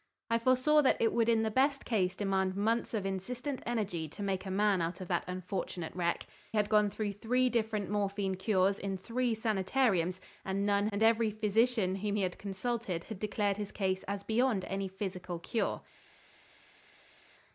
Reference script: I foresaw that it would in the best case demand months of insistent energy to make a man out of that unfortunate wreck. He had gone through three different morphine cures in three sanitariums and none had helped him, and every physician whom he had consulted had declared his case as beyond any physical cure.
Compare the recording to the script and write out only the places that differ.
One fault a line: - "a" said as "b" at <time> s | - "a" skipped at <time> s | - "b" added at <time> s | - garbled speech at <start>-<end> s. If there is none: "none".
- "He" skipped at 6.2 s
- "had helped him" skipped at 10.9 s